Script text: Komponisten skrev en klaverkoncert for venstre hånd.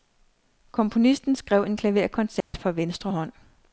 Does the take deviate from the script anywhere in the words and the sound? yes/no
yes